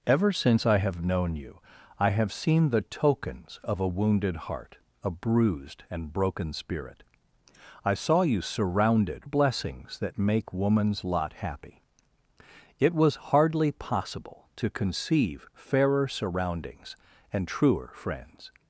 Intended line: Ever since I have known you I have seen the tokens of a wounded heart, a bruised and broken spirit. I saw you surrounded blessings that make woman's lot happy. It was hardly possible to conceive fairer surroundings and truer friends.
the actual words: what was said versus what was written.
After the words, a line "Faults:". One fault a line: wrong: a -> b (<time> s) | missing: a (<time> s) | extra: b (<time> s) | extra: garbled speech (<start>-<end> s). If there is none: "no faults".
Ever since I have known you I have seen the tokens of a wounded heart, a bruised and broken spirit. I saw you surrounded blessings that make woman's lot happy. It was hardly possible to conceive fairer surroundings and truer friends.
Faults:
no faults